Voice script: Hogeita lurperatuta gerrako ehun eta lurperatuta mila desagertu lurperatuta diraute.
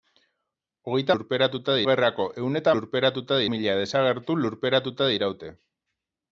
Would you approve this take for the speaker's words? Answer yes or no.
yes